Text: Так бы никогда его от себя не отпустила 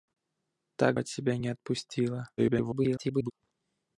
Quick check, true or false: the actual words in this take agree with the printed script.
false